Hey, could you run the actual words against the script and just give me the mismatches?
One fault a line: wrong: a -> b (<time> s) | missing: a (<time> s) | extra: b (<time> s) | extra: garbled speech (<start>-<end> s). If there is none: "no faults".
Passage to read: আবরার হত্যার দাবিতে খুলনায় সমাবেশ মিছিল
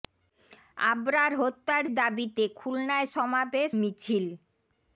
no faults